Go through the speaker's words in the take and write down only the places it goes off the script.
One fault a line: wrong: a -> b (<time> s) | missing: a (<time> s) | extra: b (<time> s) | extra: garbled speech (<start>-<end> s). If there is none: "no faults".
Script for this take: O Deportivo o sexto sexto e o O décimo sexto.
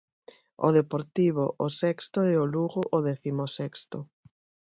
missing: sexto (2.2 s)
extra: Lugo (2.5 s)